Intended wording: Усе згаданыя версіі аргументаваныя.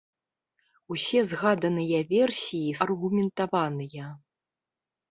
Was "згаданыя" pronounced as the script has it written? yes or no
yes